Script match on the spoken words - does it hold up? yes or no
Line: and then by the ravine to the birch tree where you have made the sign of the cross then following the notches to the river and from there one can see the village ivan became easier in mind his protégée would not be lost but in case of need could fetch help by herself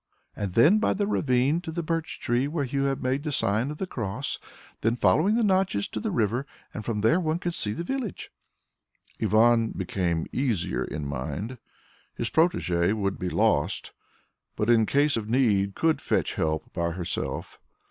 no